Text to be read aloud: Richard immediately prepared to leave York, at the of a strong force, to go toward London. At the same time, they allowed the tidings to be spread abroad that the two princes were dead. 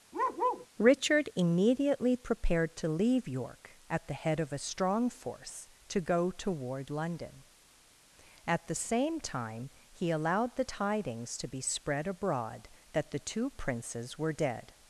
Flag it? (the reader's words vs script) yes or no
yes